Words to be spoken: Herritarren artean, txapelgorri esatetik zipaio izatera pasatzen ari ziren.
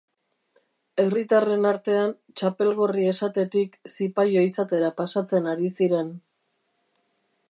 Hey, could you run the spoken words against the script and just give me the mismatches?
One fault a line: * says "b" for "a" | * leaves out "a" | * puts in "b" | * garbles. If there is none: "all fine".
all fine